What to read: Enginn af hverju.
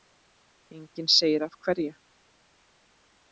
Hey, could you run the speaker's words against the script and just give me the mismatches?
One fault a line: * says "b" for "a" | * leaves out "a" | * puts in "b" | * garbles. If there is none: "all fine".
* puts in "segir"